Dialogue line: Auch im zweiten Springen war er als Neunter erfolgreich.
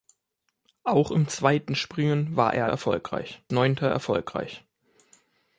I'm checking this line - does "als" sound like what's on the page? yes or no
no